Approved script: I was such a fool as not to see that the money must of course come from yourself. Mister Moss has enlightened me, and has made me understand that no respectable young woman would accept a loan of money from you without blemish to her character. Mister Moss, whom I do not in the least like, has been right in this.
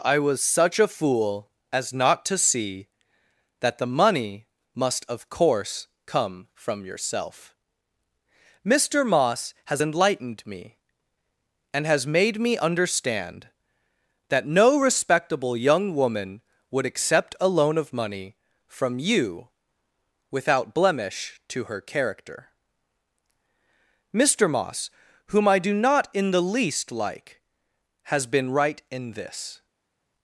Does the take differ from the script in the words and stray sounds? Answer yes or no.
no